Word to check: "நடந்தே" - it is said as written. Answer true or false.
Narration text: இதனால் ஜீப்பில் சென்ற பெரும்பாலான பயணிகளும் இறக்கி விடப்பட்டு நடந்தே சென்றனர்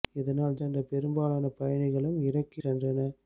false